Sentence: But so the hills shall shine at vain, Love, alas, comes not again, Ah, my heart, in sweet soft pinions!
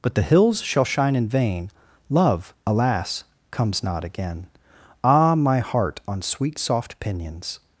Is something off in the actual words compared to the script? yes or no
yes